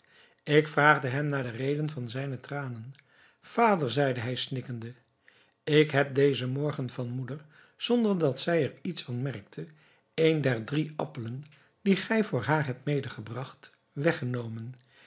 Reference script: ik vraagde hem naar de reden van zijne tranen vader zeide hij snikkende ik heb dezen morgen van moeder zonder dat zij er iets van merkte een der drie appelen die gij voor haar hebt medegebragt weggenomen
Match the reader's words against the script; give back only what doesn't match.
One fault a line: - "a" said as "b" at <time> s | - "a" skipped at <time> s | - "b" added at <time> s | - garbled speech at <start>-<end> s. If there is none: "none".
none